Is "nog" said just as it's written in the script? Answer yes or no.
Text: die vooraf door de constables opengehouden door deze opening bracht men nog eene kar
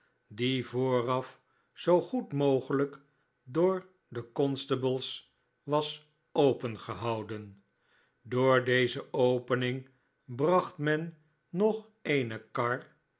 yes